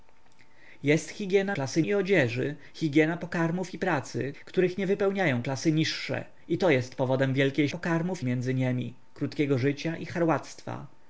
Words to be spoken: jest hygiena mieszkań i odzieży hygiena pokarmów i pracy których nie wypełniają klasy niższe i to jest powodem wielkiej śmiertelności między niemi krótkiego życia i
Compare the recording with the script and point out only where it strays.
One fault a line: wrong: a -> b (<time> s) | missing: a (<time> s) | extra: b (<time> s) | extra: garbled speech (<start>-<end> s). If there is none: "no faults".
wrong: mieszkań -> klasy (1.5 s)
wrong: śmiertelności -> pokarmów (7.7 s)